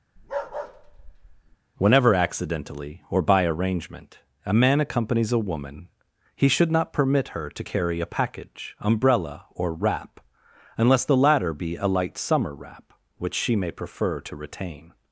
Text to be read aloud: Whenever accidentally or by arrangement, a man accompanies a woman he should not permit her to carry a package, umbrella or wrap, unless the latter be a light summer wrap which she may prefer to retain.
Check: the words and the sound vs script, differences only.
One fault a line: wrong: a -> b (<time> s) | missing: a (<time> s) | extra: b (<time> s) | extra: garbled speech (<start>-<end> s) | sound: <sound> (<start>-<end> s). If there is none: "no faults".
sound: bark (0.2-1.6 s)